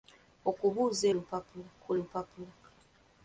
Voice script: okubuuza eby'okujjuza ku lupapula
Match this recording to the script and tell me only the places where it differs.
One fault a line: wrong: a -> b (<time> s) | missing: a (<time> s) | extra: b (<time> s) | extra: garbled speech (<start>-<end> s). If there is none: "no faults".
wrong: eby'okujjuza -> lupapula (1.1 s)